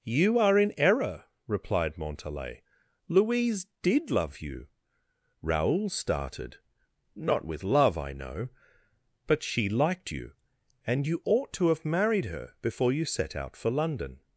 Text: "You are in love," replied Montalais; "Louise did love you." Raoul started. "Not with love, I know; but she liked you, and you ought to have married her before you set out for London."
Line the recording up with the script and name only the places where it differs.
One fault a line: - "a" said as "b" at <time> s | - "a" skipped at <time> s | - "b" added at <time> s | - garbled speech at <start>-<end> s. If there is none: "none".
- "love" said as "error" at 0.8 s